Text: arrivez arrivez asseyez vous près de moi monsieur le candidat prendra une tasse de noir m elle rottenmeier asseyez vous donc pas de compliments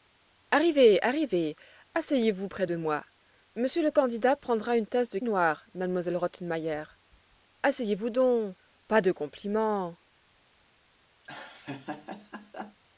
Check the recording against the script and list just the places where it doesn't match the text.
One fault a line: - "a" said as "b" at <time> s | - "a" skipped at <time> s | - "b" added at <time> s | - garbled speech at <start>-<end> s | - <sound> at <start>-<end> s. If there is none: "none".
- laugh at 11.2-12.8 s